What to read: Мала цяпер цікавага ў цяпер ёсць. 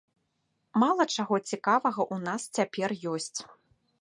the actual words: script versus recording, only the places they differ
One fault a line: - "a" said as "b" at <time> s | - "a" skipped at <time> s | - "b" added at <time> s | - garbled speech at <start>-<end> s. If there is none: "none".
- "цяпер" said as "чаго" at 1.2 s
- "нас" added at 2.3 s